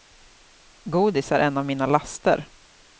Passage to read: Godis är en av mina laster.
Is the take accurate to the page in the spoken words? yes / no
yes